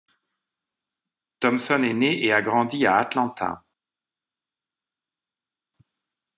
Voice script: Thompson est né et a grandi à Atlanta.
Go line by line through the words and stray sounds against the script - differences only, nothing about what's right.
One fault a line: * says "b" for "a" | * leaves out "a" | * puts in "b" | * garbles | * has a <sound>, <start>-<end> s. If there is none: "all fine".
all fine